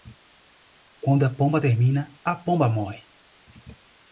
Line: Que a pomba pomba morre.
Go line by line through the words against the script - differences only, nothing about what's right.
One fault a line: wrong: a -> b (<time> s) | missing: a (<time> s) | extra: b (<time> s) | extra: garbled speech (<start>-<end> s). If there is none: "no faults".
wrong: Que -> Quando (1.0 s)
extra: termina a (1.6 s)